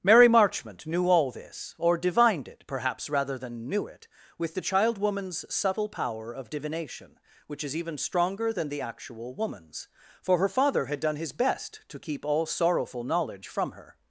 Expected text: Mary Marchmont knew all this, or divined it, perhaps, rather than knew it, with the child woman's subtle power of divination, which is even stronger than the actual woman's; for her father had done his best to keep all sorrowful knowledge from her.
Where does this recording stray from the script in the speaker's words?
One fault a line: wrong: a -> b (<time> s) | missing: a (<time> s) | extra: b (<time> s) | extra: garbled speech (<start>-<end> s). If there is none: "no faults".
no faults